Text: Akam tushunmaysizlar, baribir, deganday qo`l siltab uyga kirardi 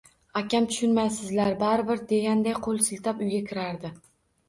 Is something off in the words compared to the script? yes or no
no